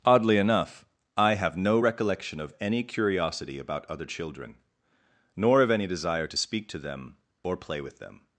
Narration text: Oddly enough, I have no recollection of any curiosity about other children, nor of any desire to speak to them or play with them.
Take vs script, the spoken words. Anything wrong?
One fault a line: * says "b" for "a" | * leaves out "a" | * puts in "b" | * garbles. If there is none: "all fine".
all fine